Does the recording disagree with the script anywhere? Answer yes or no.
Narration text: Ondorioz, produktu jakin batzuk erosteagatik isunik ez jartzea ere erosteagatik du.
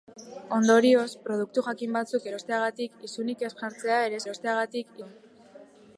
no